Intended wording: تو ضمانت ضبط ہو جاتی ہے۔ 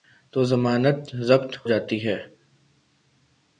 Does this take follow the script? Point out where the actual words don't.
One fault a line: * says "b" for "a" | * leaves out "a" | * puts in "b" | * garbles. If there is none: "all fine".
* leaves out "ہو"